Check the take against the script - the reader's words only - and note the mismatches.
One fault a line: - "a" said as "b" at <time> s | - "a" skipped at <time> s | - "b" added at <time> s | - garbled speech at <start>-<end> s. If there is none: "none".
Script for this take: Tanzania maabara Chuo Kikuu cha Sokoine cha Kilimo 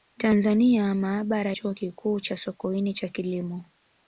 none